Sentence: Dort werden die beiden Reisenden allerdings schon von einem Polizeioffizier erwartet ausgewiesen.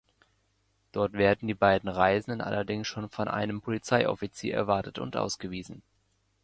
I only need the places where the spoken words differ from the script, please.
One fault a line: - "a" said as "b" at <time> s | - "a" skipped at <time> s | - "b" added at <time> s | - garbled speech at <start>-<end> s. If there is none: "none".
- "und" added at 5.0 s